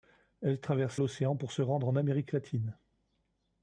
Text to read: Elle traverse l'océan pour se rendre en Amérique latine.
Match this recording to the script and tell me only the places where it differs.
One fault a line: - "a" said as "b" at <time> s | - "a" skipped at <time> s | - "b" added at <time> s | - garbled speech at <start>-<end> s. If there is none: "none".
none